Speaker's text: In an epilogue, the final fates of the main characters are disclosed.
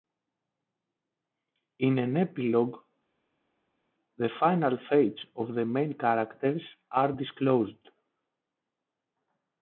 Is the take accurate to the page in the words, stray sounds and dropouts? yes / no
yes